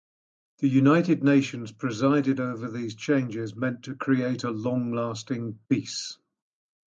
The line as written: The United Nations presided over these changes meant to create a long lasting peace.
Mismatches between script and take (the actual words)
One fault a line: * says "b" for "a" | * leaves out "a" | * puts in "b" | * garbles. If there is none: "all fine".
all fine